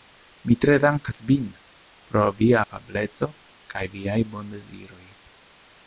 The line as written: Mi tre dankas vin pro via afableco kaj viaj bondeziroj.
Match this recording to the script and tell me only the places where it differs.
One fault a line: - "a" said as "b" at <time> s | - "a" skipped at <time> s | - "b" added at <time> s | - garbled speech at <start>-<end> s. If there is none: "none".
none